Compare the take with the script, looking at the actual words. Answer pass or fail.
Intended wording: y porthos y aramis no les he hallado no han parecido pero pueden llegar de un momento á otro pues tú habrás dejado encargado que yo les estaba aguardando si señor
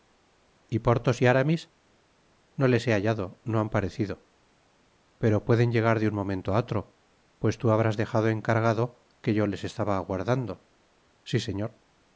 pass